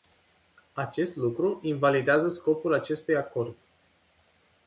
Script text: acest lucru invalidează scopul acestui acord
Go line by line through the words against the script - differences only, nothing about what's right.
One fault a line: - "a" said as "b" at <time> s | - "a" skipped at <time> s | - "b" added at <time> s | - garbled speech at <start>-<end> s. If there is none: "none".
none